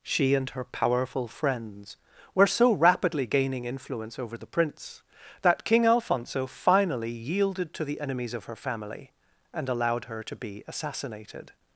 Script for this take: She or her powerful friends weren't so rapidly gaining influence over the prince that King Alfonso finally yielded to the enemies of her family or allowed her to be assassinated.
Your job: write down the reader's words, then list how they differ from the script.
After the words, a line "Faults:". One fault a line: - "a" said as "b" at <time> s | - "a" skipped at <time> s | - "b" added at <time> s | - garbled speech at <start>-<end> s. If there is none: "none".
She and her powerful friends were so rapidly gaining influence over the prince that King Alfonso finally yielded to the enemies of her family and allowed her to be assassinated.
Faults:
- "or" said as "and" at 0.3 s
- "weren't" said as "were" at 2.3 s
- "or" said as "and" at 9.5 s